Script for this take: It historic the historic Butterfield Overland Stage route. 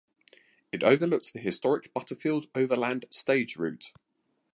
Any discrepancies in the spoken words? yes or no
yes